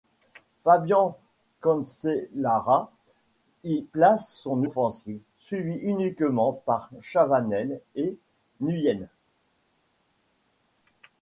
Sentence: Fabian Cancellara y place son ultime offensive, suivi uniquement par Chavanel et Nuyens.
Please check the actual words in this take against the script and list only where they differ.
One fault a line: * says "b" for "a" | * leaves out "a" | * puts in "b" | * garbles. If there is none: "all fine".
* leaves out "ultime"